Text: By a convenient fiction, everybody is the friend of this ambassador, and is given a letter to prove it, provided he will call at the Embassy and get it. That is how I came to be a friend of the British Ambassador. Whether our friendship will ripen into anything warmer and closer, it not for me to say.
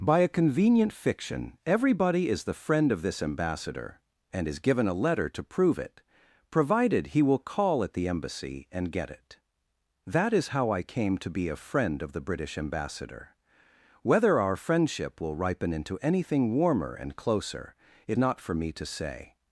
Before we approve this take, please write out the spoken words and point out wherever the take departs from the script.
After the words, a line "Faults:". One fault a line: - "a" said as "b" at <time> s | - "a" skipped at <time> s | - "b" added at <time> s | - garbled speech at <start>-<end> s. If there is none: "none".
By a convenient fiction, everybody is the friend of this ambassador, and is given a letter to prove it, provided he will call at the Embassy and get it. That is how I came to be a friend of the British Ambassador. Whether our friendship will ripen into anything warmer and closer, it not for me to say.
Faults:
none